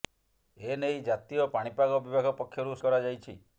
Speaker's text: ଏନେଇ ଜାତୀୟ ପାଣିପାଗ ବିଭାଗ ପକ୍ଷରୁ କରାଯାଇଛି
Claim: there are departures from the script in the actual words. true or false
false